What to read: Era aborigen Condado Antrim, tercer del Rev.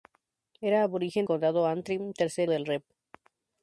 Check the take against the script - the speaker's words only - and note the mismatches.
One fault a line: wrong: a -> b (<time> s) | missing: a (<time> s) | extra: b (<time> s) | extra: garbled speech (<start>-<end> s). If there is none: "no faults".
no faults